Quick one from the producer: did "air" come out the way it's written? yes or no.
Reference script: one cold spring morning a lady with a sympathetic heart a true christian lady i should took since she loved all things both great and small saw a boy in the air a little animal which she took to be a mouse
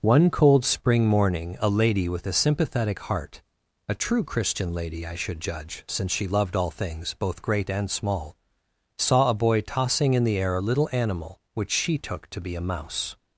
yes